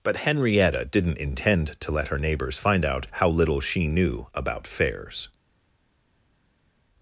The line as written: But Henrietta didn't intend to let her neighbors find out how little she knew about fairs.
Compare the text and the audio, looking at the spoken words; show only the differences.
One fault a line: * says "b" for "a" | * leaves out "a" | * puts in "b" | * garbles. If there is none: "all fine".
all fine